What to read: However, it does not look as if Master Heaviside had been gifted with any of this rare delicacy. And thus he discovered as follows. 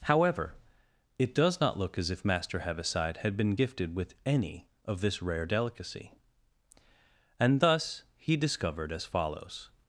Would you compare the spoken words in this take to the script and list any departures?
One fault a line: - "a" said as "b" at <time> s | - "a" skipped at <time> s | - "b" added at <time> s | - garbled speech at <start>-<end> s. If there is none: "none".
none